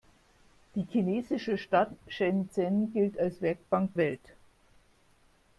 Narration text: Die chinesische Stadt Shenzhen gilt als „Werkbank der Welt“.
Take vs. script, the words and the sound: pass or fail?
fail